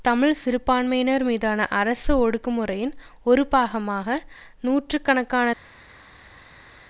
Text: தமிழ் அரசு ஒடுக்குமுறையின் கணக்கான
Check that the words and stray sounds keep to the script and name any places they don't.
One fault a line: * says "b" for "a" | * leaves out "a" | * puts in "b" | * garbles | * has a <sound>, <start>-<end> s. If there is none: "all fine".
* puts in "சிறுபான்மையினர் மீதான"
* puts in "ஒரு பாகமாக நூற்று"